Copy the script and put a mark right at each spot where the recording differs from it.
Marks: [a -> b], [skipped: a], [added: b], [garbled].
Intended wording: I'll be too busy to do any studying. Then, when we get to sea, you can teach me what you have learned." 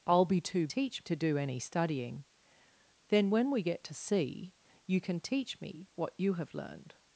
I'll be too [busy -> teach] to do any studying. Then, when we get to sea, you can teach me what you have learned."